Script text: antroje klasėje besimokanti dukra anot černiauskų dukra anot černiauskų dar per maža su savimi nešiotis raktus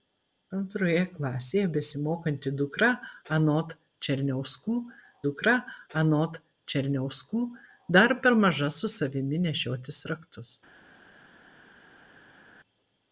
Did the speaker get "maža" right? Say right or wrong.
right